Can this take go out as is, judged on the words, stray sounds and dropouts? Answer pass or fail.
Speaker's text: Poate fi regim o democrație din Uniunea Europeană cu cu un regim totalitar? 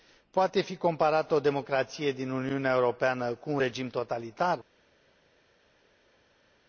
fail